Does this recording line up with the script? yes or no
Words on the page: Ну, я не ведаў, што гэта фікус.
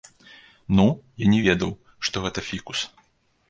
yes